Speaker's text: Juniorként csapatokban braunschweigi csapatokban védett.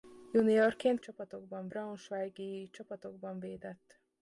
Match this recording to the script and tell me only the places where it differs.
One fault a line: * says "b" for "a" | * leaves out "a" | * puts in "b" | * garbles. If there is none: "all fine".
all fine